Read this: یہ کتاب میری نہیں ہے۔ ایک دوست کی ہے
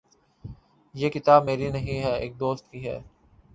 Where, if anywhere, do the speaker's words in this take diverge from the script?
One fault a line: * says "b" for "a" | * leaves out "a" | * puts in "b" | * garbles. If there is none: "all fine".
all fine